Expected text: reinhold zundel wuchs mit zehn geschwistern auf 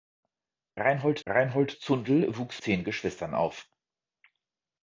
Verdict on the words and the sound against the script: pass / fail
fail